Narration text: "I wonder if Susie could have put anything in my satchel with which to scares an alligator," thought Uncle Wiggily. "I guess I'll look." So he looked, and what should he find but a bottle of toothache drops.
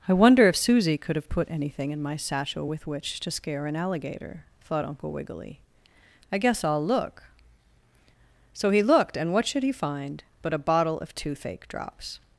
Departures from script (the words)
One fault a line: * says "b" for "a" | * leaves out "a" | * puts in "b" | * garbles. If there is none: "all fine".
* says "scare" for "scares"